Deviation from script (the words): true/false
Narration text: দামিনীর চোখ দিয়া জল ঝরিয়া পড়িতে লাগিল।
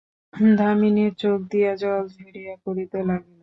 false